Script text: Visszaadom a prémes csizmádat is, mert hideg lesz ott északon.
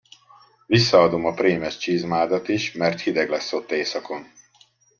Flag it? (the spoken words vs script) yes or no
no